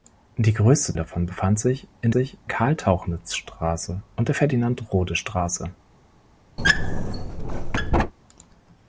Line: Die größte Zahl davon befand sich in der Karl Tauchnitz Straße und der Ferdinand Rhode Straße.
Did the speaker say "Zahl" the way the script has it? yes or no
no